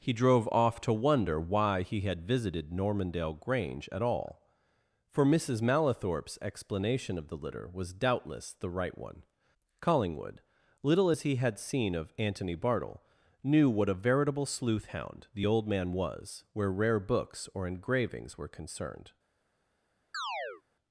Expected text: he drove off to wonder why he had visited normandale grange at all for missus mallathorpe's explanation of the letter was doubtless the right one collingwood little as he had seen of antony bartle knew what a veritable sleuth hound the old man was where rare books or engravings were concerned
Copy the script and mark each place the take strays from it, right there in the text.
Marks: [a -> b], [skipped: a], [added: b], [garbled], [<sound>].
he drove off to wonder why he had visited normandale grange at all for missus mallathorpe's explanation of the [letter -> litter] was doubtless the right one collingwood little as he had seen of antony bartle knew what a veritable sleuth hound the old man was where rare books or engravings were concerned [chirp]